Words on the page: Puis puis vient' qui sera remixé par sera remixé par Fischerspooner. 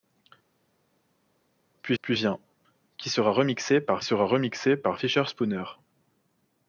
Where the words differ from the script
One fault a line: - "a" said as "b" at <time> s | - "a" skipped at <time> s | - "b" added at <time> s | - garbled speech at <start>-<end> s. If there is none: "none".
none